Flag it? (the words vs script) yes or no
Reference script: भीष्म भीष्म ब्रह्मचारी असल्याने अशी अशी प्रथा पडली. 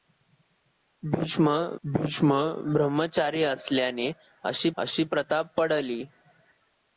no